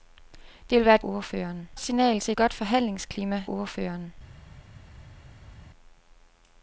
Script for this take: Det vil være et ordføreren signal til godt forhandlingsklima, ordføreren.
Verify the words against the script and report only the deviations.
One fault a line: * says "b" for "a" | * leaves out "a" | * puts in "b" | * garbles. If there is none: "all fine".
all fine